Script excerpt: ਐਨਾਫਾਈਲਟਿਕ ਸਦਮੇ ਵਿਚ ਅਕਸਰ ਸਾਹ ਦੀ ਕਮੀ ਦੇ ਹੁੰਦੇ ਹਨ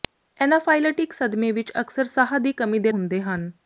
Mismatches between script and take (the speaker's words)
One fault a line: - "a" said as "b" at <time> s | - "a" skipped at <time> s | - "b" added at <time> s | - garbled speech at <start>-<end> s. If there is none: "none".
none